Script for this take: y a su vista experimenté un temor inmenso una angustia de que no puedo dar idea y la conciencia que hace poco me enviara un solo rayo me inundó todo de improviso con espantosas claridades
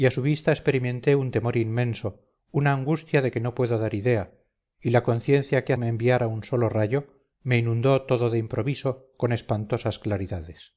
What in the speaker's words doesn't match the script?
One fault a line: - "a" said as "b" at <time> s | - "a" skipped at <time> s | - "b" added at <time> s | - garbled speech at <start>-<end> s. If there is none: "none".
- "hace poco" skipped at 5.7 s